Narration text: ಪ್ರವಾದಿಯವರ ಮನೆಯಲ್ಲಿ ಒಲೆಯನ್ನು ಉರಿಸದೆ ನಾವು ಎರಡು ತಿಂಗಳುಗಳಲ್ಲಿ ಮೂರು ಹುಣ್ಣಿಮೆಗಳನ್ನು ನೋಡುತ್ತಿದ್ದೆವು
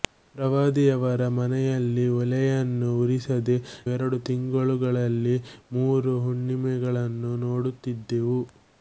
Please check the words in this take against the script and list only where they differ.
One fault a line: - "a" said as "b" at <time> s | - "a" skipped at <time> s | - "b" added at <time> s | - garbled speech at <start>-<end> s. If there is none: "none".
- "ನಾವು" skipped at 3.6 s